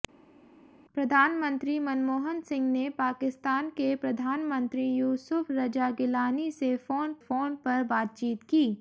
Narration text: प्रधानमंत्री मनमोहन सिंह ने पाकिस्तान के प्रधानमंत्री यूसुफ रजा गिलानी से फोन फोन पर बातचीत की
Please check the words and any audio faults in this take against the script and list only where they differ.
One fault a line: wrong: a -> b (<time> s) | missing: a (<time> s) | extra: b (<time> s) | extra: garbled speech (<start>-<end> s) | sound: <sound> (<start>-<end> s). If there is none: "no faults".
no faults